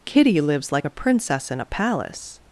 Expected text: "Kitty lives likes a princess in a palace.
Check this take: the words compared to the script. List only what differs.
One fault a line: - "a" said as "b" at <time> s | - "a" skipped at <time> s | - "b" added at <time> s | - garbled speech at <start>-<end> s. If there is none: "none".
- "likes" said as "like" at 0.7 s